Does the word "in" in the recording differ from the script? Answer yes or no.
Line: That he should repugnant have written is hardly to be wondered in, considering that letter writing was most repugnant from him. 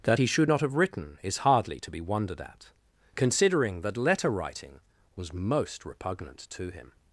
yes